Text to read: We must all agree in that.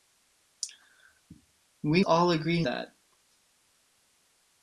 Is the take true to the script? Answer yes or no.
no